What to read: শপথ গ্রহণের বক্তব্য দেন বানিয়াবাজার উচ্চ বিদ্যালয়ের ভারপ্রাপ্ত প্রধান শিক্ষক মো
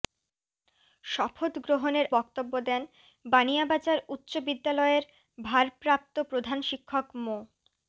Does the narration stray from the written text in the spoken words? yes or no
no